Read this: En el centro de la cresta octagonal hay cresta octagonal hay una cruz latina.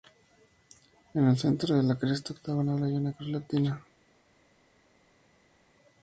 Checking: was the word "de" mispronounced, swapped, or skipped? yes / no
no